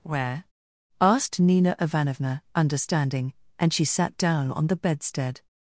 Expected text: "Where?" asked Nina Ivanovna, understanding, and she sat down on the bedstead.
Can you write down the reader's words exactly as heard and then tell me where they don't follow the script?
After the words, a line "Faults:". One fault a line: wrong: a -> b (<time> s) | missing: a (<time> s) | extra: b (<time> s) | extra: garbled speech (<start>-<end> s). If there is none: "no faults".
"Where?" asked Nina Ivanovna, understanding, and she sat down on the bedstead.
Faults:
no faults